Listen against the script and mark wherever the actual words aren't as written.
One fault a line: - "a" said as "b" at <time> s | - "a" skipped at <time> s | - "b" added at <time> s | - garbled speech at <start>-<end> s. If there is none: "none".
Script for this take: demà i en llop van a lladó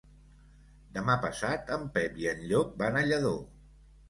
- "passat en pep" added at 1.2 s